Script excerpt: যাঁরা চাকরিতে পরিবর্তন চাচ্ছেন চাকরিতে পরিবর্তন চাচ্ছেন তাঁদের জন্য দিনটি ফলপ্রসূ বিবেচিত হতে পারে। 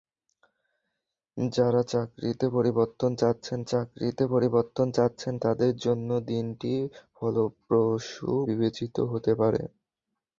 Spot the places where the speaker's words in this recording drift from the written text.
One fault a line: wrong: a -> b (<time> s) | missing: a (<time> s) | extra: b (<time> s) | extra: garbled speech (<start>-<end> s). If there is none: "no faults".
no faults